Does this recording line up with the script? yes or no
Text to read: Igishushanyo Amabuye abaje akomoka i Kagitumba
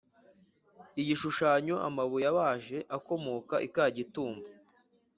yes